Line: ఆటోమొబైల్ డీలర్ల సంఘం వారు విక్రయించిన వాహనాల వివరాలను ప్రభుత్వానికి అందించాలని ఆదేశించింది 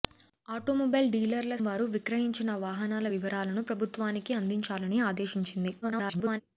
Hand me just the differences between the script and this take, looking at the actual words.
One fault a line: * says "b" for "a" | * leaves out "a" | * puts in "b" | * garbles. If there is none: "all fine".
* leaves out "సంఘం"
* garbles